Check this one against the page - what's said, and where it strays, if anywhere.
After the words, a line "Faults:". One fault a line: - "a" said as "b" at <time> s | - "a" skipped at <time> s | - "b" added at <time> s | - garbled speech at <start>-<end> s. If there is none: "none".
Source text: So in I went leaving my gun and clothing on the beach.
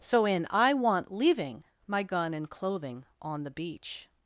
So in I want leaving my gun and clothing on the beach.
Faults:
- "went" said as "want" at 0.7 s